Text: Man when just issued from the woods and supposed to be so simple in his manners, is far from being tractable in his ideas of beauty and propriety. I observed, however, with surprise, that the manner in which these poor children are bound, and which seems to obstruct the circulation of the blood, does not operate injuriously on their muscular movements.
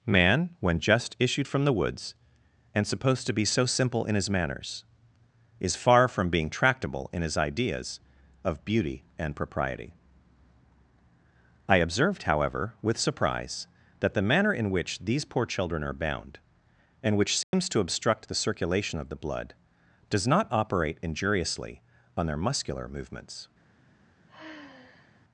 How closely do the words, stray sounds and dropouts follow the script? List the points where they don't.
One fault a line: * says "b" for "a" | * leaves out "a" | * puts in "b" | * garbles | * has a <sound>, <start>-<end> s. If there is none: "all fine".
* has a dropout, 17.4-17.5 s
* has a sigh, 24.3-25.2 s